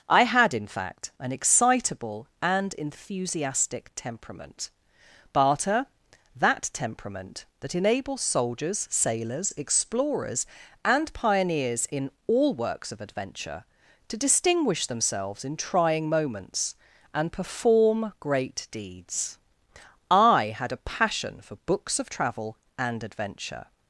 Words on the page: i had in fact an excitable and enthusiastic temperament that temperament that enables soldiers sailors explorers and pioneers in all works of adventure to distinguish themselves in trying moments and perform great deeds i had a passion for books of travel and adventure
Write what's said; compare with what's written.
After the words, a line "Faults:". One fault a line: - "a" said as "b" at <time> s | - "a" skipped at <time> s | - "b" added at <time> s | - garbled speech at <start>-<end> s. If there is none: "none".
i had in fact an excitable and enthusiastic temperament barter that temperament that enables soldiers sailors explorers and pioneers in all works of adventure to distinguish themselves in trying moments and perform great deeds i had a passion for books of travel and adventure
Faults:
- "barter" added at 5.3 s